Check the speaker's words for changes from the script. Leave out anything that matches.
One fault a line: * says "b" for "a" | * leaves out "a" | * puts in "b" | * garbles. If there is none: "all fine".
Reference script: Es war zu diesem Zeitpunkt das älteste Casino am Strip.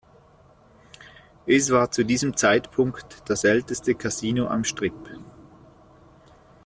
all fine